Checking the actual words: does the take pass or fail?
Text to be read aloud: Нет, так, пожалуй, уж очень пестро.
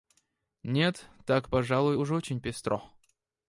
pass